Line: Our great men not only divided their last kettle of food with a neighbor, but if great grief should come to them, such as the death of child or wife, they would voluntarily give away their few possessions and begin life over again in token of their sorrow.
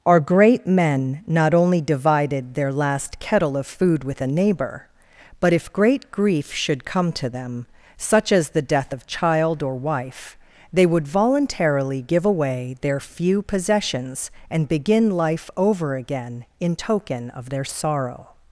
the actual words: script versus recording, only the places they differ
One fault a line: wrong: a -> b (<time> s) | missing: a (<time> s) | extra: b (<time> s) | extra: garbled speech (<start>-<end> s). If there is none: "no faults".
no faults